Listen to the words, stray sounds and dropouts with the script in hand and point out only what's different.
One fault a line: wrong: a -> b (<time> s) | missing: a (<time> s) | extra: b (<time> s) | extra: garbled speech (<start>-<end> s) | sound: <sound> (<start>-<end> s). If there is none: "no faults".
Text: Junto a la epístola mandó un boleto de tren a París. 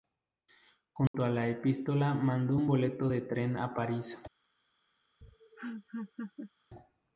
sound: dropout (1.1-1.1 s)
sound: laugh (5.2-6.5 s)